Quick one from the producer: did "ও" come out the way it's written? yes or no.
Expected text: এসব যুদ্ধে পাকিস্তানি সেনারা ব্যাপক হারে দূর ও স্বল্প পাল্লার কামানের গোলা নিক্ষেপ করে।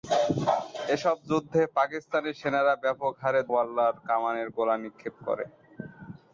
no